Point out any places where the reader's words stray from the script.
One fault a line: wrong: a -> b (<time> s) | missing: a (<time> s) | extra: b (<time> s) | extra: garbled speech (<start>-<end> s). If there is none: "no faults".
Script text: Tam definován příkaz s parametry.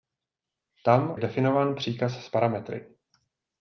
no faults